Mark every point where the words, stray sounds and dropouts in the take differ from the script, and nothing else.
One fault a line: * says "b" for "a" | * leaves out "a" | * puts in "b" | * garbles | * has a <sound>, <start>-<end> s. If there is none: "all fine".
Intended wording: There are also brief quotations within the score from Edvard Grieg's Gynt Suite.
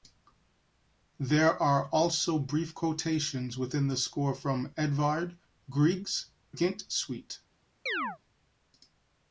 * has a chirp, 7.9-8.2 s